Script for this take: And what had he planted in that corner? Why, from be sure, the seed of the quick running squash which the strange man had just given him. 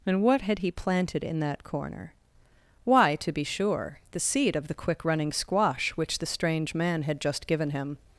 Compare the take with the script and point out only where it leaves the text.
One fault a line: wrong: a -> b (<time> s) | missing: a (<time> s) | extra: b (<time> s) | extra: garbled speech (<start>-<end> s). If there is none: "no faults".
wrong: from -> to (3.2 s)